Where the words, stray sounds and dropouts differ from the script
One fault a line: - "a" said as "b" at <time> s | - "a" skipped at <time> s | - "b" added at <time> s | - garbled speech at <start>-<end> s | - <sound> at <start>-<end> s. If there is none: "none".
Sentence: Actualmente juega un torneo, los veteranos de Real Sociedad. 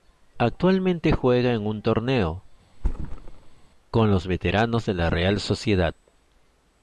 - "en" added at 1.5 s
- thud at 2.7-3.7 s
- "con" added at 3.9 s
- "la" added at 4.9 s